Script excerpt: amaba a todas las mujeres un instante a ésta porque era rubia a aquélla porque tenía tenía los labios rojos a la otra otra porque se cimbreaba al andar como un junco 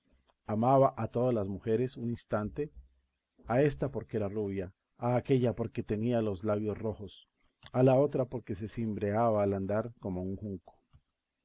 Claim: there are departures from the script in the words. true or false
true